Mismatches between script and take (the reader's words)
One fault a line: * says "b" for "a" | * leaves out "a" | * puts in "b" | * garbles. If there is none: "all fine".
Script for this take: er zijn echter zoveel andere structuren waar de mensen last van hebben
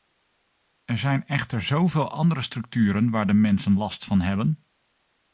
all fine